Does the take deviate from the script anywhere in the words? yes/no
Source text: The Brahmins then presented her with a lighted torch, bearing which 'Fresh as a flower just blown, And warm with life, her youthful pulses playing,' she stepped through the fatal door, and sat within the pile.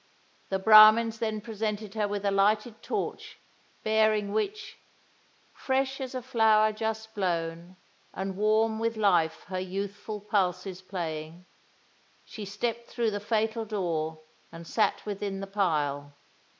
no